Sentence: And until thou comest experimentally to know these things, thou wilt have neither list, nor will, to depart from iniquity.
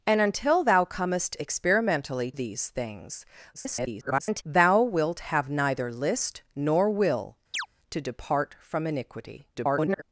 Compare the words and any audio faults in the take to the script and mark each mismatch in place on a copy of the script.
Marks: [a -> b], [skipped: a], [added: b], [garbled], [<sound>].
And until thou comest experimentally [skipped: to know] these things, [garbled] thou wilt have neither list, nor will, [chirp] to depart from iniquity. [garbled]